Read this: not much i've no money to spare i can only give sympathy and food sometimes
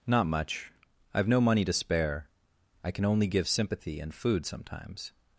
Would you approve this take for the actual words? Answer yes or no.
yes